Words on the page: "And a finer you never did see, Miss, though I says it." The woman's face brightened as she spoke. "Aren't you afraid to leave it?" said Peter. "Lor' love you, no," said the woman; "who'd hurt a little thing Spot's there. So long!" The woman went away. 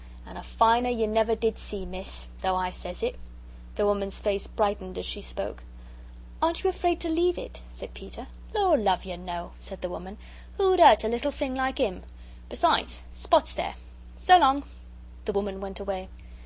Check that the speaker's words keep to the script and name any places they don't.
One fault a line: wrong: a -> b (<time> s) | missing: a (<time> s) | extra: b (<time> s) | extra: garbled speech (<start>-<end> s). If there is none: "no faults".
extra: like im Besides (11.5 s)